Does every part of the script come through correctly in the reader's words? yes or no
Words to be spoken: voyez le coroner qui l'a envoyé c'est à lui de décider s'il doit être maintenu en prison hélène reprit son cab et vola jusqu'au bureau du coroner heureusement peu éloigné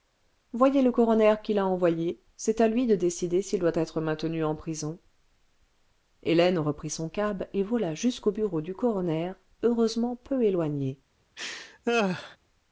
yes